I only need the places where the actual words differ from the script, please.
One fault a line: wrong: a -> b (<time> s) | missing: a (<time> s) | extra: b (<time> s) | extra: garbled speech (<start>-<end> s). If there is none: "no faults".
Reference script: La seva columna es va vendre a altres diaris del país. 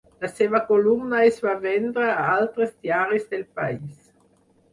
no faults